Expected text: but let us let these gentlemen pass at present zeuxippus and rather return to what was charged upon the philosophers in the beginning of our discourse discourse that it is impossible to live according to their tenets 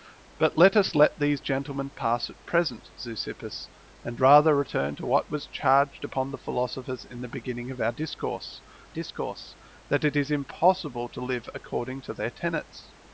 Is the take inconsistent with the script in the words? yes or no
no